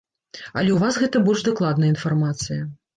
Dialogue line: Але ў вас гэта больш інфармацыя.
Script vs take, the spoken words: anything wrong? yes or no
yes